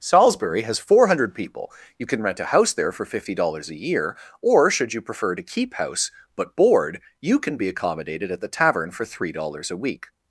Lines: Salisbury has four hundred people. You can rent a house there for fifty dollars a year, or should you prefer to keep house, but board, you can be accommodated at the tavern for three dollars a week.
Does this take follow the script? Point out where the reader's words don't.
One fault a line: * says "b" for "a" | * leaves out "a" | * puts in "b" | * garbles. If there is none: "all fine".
all fine